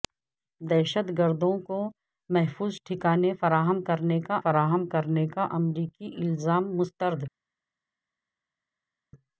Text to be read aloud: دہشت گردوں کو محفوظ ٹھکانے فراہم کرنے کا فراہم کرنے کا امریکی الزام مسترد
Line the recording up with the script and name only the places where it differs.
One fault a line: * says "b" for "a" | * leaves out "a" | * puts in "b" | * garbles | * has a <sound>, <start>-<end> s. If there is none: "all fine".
all fine